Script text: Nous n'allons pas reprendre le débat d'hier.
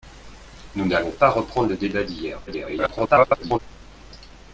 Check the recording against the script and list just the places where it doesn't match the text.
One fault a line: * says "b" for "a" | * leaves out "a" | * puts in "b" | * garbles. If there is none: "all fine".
* garbles